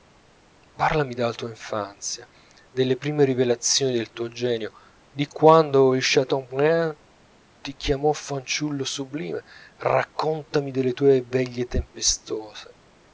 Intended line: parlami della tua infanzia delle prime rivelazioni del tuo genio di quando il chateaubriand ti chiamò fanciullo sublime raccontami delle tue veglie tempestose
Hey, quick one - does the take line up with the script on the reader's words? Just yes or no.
yes